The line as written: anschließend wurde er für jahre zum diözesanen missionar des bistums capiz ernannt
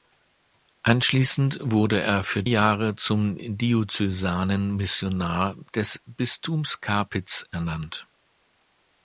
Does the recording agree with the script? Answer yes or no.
yes